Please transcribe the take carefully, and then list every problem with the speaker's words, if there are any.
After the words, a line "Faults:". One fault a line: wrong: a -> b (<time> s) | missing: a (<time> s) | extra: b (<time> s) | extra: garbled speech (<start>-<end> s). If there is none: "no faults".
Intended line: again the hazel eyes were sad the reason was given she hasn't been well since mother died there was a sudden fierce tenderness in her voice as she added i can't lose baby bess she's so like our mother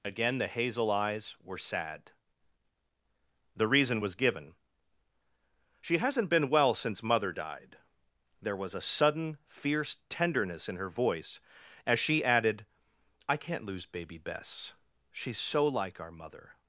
again the hazel eyes were sad the reason was given she hasn't been well since mother died there was a sudden fierce tenderness in her voice as she added i can't lose baby bess she's so like our mother
Faults:
no faults